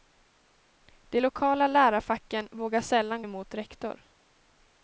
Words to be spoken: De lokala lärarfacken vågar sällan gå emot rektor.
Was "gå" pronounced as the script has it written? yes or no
no